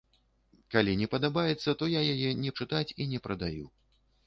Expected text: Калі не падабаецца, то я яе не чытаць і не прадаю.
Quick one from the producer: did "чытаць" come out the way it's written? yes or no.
yes